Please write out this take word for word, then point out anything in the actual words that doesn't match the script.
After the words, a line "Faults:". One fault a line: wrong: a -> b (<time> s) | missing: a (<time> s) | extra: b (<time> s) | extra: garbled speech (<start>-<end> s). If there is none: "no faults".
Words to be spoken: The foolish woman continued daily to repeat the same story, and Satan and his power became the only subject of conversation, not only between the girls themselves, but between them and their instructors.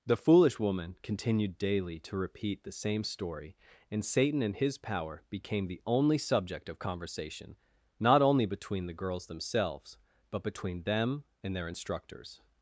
The foolish woman continued daily to repeat the same story, and Satan and his power became the only subject of conversation, not only between the girls themselves, but between them and their instructors.
Faults:
no faults